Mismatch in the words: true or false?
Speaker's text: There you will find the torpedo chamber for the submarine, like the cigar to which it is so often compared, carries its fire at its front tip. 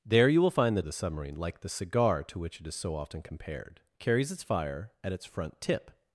true